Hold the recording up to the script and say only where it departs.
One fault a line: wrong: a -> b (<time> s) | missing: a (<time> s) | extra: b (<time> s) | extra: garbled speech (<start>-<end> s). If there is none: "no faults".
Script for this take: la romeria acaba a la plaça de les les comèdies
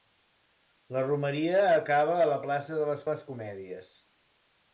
no faults